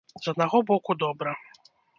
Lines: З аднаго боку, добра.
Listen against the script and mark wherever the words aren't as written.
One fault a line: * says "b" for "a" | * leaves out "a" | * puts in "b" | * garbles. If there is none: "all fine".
all fine